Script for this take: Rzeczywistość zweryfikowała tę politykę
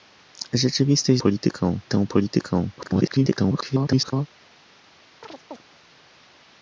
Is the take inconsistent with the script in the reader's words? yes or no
yes